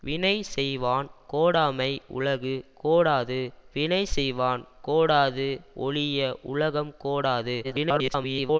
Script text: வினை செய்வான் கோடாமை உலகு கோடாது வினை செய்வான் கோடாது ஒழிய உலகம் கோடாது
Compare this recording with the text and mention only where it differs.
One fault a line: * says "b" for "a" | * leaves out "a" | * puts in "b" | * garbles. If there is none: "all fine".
* garbles